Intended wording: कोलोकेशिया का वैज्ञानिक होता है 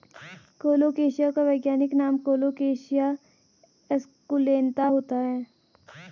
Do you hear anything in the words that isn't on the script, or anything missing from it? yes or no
yes